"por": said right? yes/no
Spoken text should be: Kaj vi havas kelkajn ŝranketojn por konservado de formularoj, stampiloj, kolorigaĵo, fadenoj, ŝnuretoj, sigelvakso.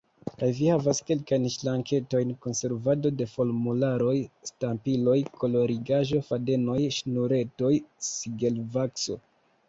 no